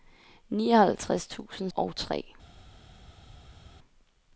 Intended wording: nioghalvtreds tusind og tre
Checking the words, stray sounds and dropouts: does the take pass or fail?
pass